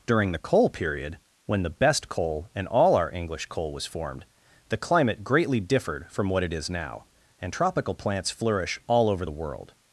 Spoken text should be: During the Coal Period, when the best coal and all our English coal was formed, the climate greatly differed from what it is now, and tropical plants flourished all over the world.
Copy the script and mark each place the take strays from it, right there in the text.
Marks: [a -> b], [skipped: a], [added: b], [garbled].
During the Coal Period, when the best coal and all our English coal was formed, the climate greatly differed from what it is now, and tropical plants [flourished -> flourish] all over the world.